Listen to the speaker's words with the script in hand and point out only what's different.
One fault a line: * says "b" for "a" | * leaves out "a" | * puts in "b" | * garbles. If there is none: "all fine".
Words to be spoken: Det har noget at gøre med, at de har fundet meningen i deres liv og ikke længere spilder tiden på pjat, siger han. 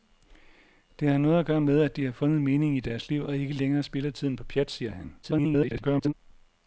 * garbles